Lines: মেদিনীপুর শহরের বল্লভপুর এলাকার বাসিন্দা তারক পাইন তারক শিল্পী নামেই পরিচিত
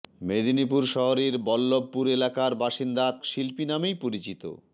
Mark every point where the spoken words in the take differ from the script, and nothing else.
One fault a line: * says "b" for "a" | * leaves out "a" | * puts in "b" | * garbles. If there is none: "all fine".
* leaves out "তারক পাইন তারক"